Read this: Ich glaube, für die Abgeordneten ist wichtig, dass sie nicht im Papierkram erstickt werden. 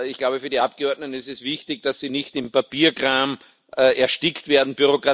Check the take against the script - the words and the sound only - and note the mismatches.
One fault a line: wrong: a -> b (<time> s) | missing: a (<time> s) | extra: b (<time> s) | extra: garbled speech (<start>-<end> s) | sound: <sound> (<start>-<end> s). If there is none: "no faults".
extra: es (1.3 s)